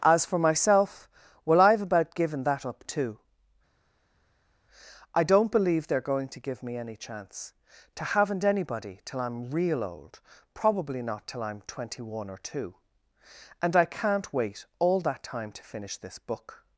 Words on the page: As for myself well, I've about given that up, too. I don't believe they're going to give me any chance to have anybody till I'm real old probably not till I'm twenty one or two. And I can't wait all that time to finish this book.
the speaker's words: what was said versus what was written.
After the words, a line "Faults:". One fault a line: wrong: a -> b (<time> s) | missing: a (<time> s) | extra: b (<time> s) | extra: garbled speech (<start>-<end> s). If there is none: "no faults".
As for myself well, I've about given that up, too. I don't believe they're going to give me any chance to haven't anybody till I'm real old probably not till I'm twenty one or two. And I can't wait all that time to finish this book.
Faults:
wrong: have -> haven't (8.0 s)